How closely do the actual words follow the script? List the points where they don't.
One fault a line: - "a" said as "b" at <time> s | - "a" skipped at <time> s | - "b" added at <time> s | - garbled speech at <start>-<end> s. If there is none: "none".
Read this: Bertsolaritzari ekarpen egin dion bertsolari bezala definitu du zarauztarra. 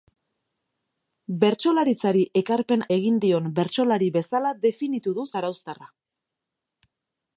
none